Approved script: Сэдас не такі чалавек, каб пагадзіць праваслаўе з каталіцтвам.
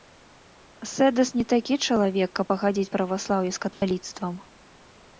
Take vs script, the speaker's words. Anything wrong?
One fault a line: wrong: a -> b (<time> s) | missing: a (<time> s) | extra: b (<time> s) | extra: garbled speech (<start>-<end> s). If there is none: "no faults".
no faults